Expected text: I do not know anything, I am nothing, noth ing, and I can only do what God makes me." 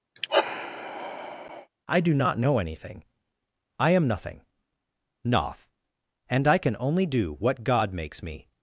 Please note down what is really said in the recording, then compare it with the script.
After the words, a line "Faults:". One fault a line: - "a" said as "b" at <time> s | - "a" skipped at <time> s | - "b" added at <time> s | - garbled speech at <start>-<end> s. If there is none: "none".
I do not know anything, I am nothing, noth, and I can only do what God makes me."
Faults:
- "ing" skipped at 5.7 s